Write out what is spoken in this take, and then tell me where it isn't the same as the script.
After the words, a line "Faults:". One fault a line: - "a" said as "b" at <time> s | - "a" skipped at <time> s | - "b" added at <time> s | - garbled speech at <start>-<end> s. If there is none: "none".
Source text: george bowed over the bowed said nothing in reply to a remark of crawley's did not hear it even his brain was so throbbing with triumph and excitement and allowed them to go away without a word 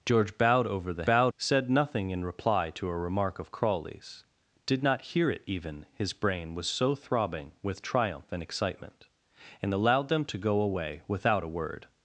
george bowed over the bowed said nothing in reply to a remark of crawley's did not hear it even his brain was so throbbing with triumph and excitement and allowed them to go away without a word
Faults:
none